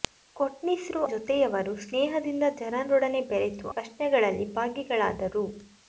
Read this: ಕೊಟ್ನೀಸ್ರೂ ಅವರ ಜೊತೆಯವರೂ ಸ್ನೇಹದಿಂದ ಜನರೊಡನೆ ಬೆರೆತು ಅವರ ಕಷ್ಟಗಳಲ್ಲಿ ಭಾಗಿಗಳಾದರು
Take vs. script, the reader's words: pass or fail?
fail